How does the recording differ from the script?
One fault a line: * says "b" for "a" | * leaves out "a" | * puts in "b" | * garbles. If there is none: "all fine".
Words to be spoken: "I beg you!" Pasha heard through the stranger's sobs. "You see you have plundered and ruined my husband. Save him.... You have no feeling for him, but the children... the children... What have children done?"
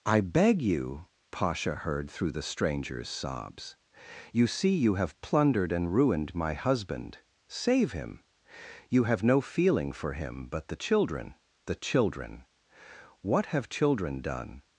all fine